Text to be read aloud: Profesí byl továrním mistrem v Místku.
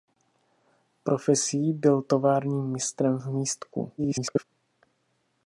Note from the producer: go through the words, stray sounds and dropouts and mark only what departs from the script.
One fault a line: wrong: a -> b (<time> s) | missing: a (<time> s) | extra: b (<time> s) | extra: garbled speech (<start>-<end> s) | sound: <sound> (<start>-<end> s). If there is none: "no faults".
extra: garbled speech (4.0-4.4 s)